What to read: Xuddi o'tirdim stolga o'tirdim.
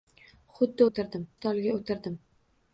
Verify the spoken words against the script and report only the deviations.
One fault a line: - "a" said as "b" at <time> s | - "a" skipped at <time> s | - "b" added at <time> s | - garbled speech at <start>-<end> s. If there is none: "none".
none